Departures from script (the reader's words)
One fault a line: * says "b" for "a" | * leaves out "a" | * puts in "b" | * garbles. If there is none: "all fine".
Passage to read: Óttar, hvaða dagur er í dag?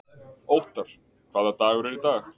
all fine